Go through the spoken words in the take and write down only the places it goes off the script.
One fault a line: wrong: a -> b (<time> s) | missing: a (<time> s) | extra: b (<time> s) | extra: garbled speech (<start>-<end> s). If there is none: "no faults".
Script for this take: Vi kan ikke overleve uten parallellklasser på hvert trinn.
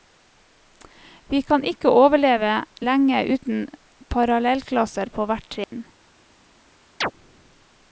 extra: lenge (2.9 s)